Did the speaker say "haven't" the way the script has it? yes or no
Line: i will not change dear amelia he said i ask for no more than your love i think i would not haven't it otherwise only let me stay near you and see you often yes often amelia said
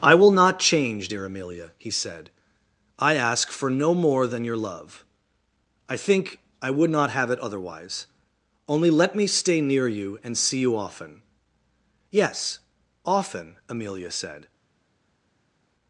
no